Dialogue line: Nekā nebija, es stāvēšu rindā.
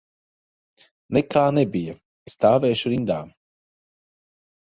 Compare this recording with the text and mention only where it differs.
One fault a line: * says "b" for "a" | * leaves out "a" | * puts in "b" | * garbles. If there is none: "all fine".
* leaves out "es"